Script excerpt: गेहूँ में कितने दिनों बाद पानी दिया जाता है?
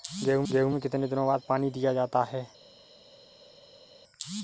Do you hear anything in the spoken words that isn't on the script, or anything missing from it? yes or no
yes